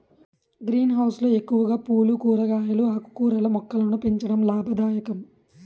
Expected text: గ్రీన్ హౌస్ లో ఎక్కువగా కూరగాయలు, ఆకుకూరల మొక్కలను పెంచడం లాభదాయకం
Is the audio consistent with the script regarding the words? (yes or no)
no